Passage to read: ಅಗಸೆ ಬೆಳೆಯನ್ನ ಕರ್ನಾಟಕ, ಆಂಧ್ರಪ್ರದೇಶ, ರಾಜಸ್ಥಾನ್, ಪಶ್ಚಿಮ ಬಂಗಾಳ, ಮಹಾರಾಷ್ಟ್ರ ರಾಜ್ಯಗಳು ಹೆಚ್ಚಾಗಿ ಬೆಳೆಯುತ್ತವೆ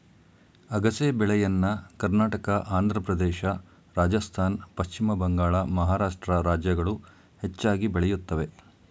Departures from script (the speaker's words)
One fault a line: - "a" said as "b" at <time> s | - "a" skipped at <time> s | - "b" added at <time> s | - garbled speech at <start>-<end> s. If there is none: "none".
none